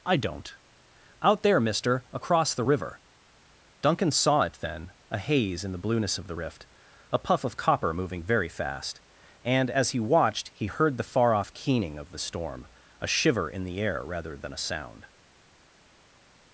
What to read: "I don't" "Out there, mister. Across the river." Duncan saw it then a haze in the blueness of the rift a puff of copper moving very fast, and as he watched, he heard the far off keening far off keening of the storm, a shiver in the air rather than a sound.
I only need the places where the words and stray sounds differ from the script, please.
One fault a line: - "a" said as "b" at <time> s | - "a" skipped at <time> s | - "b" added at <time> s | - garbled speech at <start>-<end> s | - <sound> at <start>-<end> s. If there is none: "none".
- "far off keening" skipped at 12.0 s